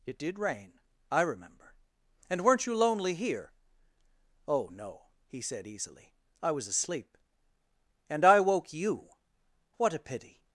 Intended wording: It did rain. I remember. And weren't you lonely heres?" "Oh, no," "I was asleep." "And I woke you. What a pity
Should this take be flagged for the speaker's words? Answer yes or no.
yes